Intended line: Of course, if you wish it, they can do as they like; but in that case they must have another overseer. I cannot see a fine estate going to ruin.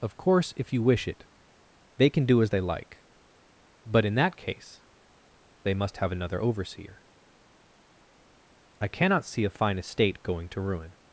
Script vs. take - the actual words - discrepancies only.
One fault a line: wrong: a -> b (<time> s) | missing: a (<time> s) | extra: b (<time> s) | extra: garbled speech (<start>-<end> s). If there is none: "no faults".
no faults